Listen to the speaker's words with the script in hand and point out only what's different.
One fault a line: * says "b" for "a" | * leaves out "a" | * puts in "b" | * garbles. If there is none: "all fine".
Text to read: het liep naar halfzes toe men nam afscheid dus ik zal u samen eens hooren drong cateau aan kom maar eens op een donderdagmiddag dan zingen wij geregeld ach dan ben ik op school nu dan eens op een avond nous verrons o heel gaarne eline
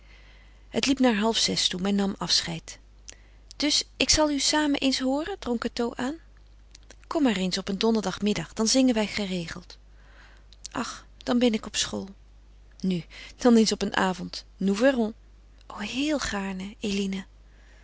all fine